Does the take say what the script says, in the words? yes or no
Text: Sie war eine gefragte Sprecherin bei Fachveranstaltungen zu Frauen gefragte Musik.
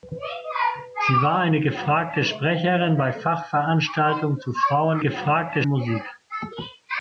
yes